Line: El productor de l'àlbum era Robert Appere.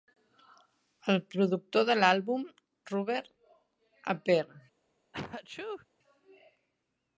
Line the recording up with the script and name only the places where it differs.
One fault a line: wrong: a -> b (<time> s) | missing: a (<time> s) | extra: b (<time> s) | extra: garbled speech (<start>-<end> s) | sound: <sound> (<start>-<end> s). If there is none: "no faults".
missing: era (2.5 s)
sound: sneeze (5.1-5.9 s)